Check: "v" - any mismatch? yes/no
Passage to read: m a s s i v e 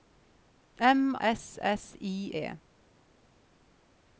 yes